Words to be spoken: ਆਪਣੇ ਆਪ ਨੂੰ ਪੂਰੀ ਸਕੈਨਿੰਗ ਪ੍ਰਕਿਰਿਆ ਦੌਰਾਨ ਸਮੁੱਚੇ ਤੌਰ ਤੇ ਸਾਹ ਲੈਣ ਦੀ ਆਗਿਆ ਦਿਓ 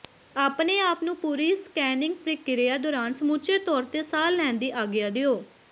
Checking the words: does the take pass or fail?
pass